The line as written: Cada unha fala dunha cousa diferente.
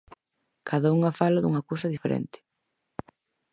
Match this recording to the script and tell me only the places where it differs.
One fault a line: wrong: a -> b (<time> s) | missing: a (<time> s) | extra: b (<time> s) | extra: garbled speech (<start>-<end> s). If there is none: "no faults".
no faults